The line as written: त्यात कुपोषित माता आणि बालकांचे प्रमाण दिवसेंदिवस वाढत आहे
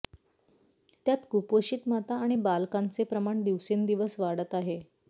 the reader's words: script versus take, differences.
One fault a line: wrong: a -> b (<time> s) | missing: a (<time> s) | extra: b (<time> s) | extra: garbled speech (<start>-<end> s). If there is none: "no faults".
no faults